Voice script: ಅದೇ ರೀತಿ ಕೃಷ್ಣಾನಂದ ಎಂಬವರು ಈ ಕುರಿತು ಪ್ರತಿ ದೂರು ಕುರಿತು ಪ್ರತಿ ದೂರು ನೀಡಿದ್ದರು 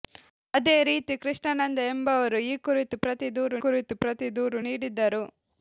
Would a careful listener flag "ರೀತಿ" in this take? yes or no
no